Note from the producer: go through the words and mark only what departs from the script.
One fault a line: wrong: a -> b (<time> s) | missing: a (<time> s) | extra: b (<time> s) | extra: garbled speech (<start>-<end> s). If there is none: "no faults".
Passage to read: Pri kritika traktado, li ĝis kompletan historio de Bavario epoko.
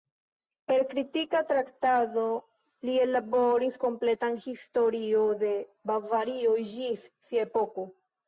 wrong: Pri -> Per (0.7 s)
wrong: ĝis -> ellaboris (3.0 s)
extra: ĝis sia (6.7 s)